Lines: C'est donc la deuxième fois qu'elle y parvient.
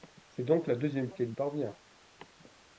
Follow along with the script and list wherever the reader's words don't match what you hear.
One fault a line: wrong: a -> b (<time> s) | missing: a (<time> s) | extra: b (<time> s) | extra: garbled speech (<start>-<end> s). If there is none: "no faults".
missing: fois (1.1 s)